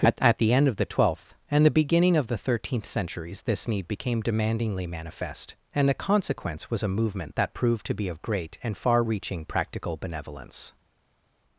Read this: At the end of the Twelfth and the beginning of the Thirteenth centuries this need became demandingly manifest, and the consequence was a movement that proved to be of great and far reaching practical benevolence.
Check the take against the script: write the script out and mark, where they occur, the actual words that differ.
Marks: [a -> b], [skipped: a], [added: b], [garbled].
At [added: at] the end of the Twelfth and the beginning of the Thirteenth centuries this need became demandingly manifest, and the consequence was a movement that proved to be of great and far reaching practical benevolence.